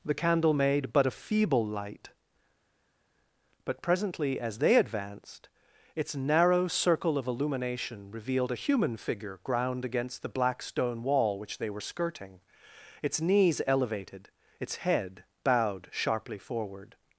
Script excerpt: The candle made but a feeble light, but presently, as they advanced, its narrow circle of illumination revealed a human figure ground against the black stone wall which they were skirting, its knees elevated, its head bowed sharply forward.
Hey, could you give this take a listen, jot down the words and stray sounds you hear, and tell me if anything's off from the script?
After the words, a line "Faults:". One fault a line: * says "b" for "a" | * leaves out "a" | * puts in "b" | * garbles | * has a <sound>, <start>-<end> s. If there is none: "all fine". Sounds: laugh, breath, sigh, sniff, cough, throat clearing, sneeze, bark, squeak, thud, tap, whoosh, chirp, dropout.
The candle made but a feeble light, but presently, as they advanced, its narrow circle of illumination revealed a human figure ground against the black stone wall which they were skirting, its knees elevated, its head bowed sharply forward.
Faults:
all fine